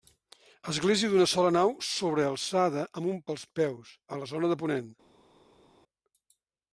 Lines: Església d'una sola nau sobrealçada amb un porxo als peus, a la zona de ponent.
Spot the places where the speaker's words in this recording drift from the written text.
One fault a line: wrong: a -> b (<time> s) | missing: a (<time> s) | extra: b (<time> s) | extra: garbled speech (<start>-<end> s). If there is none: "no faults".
missing: porxo (3.2 s)